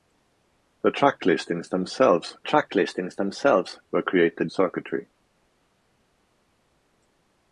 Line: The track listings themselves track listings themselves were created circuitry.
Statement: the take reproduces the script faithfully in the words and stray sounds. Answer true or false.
true